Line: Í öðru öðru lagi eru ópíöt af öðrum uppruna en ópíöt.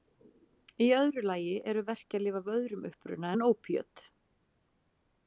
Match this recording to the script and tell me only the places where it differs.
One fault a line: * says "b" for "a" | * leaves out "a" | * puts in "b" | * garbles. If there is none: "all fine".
* leaves out "öðru"
* says "verkjalyf" for "ópíöt"